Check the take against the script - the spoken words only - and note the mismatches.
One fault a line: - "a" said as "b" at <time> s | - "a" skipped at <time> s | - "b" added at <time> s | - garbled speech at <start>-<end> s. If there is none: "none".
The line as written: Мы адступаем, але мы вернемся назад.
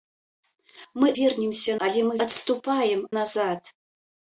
- "адступаем" said as "вернемся" at 1.2 s
- "вернемся" said as "адступаем" at 2.3 s